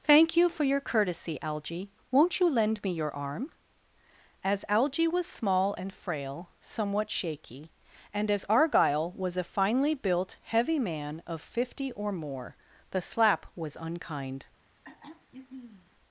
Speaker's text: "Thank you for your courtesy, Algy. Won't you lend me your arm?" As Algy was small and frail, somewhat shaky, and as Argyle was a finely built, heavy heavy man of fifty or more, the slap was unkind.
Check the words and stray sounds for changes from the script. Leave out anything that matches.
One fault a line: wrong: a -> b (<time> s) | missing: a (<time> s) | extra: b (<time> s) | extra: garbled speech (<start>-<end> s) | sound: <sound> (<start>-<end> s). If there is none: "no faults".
missing: heavy (10.8 s)
sound: throat clearing (14.8-16.0 s)